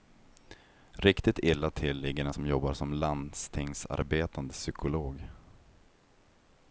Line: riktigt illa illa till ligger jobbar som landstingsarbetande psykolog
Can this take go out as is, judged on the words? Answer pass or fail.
fail